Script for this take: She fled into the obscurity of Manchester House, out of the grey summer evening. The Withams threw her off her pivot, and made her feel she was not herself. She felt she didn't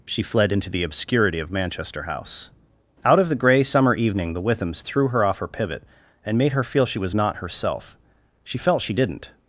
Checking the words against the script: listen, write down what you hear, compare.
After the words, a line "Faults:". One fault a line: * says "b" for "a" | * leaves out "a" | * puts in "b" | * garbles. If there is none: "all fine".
She fled into the obscurity of Manchester House, out of the grey summer evening. The Withams threw her off her pivot, and made her feel she was not herself. She felt she didn't
Faults:
all fine